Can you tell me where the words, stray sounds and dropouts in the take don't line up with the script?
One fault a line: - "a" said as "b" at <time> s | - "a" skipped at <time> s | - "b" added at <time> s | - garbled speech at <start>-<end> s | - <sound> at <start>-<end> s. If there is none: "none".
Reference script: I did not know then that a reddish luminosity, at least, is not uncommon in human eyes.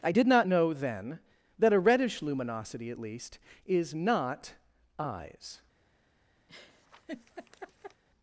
- "uncommon in human" skipped at 4.6 s
- laugh at 6.5-8.0 s